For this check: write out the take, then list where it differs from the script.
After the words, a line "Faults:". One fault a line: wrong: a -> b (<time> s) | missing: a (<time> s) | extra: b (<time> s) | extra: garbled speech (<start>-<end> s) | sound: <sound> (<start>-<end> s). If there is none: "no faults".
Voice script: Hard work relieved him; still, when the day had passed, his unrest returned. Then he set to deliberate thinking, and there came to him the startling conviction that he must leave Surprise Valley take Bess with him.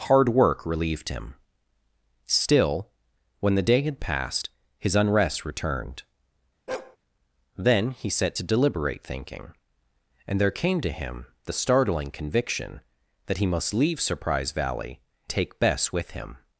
Hard work relieved him; still, when the day had passed, his unrest returned. Then he set to deliberate thinking, and there came to him the startling conviction that he must leave Surprise Valley take Bess with him.
Faults:
sound: bark (6.7-7.0 s)